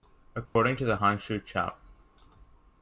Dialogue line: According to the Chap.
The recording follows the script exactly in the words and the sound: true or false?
false